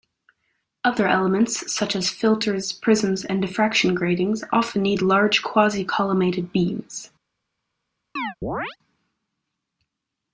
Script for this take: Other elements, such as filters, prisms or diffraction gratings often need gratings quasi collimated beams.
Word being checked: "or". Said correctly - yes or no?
no